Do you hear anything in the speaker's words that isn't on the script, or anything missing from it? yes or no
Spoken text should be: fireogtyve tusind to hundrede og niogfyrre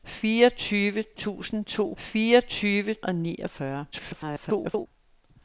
yes